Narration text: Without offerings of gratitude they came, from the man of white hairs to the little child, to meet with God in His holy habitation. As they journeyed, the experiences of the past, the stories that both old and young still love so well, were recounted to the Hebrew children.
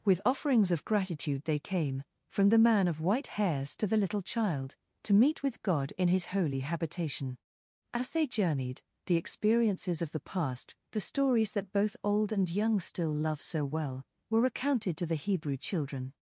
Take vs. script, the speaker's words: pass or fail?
fail